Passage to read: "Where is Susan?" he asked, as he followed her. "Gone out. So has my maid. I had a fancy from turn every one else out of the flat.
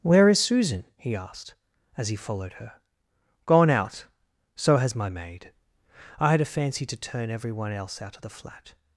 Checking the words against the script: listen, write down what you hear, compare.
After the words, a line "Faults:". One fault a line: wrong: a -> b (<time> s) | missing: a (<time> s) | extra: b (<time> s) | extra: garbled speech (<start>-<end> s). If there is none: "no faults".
"Where is Susan?" he asked, as he followed her. "Gone out. So has my maid. I had a fancy to turn every one else out of the flat.
Faults:
wrong: from -> to (6.8 s)